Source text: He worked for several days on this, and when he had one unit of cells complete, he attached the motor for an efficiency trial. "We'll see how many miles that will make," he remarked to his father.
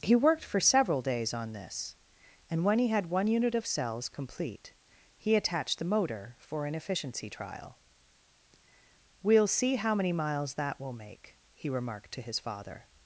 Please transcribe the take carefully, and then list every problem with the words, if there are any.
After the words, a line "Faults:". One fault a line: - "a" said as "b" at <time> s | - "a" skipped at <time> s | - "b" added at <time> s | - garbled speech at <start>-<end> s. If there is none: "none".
He worked for several days on this, and when he had one unit of cells complete, he attached the motor for an efficiency trial. "We'll see how many miles that will make," he remarked to his father.
Faults:
none